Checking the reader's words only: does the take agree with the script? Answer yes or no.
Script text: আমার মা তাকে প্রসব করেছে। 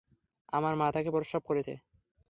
yes